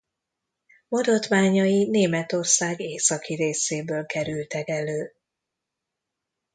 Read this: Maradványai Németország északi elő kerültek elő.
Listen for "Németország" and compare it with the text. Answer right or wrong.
right